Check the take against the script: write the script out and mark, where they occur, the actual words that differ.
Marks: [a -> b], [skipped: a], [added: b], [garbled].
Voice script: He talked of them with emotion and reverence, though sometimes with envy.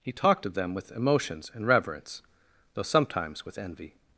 He talked of them with [emotion -> emotions] and reverence, though sometimes with envy.